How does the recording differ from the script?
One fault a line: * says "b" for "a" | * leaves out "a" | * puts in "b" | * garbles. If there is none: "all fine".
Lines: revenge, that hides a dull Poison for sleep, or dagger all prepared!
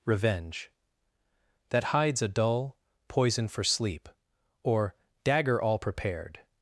all fine